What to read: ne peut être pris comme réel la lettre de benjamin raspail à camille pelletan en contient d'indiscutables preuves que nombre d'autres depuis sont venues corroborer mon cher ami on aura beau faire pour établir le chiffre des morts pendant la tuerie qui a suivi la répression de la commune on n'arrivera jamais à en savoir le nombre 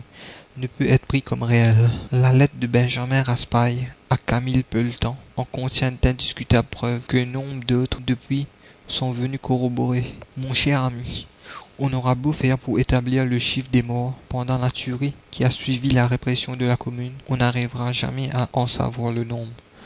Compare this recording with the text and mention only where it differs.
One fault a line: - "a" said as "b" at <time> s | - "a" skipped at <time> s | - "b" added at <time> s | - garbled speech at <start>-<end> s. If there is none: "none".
none